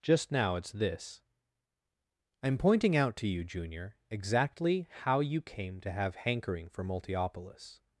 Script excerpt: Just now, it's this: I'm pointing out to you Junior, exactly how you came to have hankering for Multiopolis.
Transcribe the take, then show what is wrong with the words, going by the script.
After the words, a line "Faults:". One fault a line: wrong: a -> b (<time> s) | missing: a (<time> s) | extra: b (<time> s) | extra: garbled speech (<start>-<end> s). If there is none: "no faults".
Just now, it's this: I'm pointing out to you Junior, exactly how you came to have hankering for Multiopolis.
Faults:
no faults